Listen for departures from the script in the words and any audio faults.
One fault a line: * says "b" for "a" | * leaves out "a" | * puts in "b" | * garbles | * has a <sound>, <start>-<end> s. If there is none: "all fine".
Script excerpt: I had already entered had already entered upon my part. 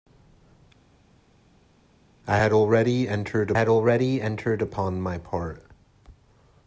all fine